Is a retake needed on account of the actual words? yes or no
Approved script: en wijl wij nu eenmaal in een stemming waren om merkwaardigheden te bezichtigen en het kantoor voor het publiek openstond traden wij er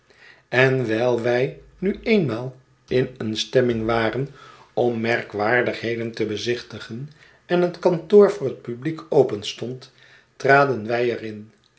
no